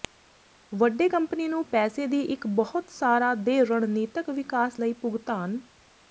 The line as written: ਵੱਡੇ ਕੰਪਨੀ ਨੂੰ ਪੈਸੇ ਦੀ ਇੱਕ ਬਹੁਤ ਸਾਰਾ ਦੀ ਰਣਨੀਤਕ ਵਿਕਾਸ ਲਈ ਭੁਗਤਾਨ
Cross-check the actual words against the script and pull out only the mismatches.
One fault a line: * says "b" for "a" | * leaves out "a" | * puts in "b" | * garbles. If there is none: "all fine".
* says "ਦੇ" for "ਦੀ"